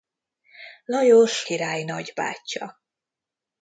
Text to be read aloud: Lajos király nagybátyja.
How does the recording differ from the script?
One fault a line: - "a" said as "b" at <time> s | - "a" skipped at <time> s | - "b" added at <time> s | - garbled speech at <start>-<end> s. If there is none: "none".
none